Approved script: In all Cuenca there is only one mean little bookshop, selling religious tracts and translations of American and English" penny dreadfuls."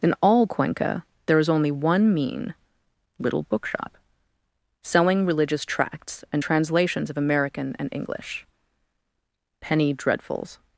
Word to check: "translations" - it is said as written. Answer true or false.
true